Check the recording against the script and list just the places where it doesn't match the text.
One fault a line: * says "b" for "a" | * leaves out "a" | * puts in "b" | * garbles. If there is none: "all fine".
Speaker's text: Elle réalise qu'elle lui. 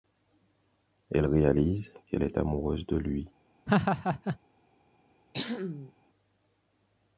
* puts in "est amoureuse de"